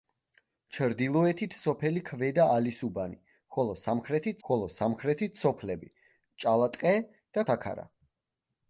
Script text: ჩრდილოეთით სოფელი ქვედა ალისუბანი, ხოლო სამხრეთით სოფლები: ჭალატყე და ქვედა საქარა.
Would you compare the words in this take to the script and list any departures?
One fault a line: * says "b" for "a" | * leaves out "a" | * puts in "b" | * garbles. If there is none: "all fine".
* puts in "ხოლო სამხრეთით"
* leaves out "ქვედა"